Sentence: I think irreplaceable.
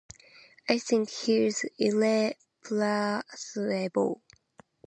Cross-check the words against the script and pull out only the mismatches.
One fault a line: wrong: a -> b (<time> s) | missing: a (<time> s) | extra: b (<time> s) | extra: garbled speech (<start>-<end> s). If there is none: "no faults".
extra: he's (1.1 s)